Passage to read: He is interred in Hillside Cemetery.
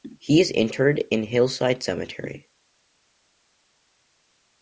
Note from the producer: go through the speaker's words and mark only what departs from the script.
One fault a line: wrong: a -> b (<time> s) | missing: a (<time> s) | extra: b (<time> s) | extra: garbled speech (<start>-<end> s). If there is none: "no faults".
no faults